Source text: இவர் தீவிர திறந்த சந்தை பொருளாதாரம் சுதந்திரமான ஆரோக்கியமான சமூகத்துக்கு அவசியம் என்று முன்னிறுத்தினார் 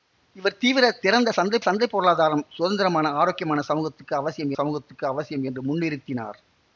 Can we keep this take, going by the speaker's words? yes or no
no